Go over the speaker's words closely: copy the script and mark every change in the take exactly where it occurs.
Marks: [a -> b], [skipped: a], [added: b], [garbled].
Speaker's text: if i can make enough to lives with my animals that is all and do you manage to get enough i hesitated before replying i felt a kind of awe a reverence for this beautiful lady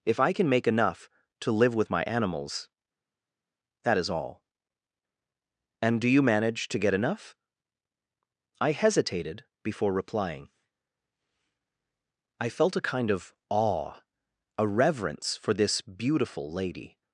if i can make enough to [lives -> live] with my animals that is all and do you manage to get enough i hesitated before replying i felt a kind of awe a reverence for this beautiful lady